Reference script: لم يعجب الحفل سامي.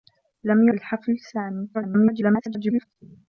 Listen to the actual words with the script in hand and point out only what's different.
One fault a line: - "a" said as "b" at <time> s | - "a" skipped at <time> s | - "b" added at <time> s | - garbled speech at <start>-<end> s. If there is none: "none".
- "يعجب" skipped at 0.7 s
- garbled speech at 1.7-2.9 s